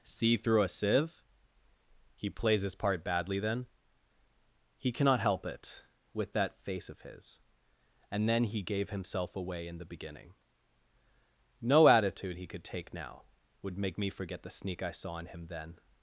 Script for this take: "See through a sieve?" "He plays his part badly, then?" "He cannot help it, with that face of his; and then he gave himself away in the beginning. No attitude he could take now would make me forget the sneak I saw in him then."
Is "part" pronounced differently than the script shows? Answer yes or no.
no